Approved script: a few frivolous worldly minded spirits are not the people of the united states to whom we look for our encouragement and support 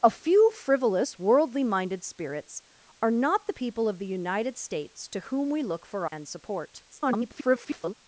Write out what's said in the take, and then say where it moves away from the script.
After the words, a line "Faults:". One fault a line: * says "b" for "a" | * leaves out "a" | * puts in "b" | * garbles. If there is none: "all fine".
a few frivolous worldly minded spirits are not the people of the united states to whom we look for and support [garbled]
Faults:
* leaves out "our encouragement"
* garbles